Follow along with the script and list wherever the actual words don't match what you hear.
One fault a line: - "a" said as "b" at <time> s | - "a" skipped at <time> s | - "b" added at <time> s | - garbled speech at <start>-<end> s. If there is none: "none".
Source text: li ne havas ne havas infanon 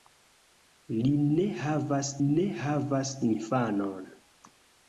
none